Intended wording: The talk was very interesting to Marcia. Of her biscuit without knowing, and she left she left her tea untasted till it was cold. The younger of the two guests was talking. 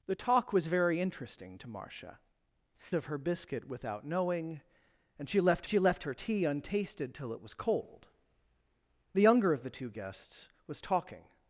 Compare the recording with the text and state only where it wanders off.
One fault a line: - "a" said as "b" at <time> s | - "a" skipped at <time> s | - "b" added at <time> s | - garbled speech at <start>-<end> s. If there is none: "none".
none